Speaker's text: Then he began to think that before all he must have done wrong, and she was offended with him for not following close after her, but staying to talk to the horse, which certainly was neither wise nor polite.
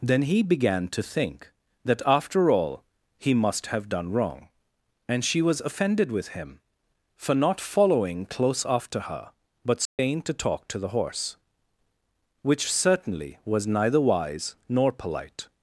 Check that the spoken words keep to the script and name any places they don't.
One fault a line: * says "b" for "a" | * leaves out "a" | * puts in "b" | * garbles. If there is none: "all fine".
* says "after" for "before"